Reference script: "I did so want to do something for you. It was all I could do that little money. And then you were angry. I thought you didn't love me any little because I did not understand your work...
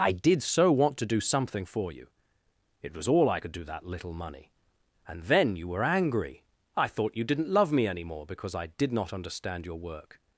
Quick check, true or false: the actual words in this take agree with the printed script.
false